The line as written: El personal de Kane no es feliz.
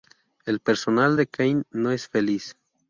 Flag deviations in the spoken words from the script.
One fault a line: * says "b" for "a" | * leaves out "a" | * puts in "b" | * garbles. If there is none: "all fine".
all fine